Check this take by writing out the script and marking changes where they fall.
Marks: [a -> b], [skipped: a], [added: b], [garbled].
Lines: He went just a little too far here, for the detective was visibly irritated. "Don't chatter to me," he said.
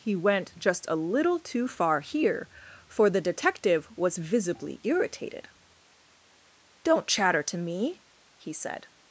He went just a little too far here, for the detective was visibly irritated. "Don't chatter to me," he said.